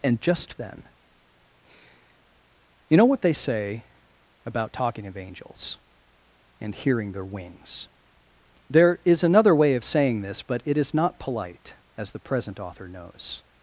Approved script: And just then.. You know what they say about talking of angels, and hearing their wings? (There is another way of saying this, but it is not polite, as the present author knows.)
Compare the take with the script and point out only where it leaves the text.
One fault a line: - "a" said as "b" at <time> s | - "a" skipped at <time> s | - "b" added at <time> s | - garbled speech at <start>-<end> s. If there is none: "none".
none